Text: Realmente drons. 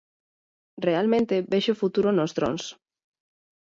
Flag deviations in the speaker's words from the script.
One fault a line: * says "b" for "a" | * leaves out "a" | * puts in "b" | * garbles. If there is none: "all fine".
* puts in "vexo futuro nos"